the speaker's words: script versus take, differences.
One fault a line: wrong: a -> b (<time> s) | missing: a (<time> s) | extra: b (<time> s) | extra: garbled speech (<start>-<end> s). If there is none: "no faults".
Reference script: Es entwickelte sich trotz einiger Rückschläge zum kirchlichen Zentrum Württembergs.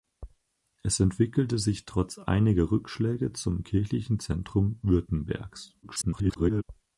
extra: garbled speech (5.8-6.6 s)